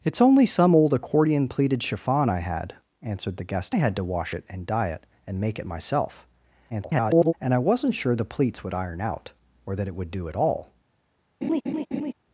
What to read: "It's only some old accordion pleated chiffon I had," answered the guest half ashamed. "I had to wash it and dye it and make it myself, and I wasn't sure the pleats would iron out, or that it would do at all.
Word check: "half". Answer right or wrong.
wrong